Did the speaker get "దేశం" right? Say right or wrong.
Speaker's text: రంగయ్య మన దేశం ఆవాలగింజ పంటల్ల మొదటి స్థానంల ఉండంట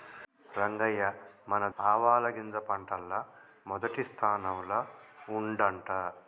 wrong